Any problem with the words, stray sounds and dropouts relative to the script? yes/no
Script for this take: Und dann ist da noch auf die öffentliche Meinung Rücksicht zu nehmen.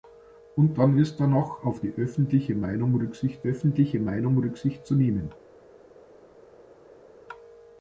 yes